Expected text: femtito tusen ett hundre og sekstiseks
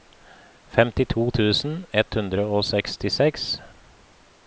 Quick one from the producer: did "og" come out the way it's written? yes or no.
yes